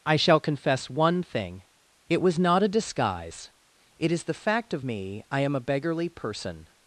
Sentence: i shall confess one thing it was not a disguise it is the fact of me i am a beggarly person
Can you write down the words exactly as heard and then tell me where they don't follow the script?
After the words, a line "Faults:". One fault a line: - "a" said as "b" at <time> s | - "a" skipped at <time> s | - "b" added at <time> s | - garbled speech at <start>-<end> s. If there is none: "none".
i shall confess one thing it was not a disguise it is the fact of me i am a beggarly person
Faults:
none